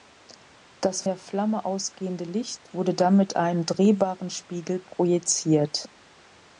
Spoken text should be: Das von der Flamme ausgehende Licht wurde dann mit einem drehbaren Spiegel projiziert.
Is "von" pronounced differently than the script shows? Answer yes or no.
yes